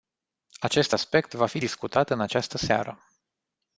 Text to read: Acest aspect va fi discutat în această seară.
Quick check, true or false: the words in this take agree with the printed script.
true